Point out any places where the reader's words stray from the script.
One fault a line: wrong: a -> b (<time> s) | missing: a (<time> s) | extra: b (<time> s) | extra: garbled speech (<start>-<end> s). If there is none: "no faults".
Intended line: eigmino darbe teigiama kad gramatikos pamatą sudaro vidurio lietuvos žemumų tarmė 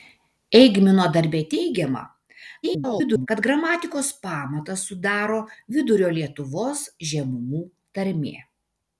extra: garbled speech (2.6-3.3 s)